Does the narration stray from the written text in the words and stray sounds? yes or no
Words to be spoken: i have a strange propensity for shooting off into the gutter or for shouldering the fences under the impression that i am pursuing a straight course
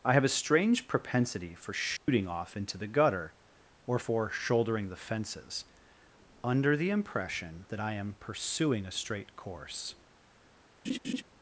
yes